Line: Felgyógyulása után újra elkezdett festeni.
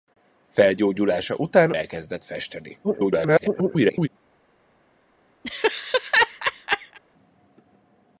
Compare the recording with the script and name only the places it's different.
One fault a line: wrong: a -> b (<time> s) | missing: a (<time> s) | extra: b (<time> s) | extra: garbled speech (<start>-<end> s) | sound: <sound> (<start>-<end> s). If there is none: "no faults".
missing: újra (1.7 s)
extra: garbled speech (2.8-4.1 s)
sound: laugh (5.4-7.0 s)